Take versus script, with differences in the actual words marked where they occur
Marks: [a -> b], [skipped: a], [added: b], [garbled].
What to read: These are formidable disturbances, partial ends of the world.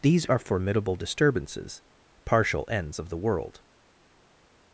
These are formidable disturbances, partial ends of the world.